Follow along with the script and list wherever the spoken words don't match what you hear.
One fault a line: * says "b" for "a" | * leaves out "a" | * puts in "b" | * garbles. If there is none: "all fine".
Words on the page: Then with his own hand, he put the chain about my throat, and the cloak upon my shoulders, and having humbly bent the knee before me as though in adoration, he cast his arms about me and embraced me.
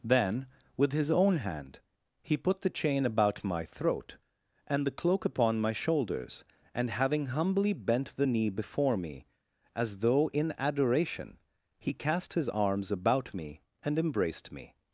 all fine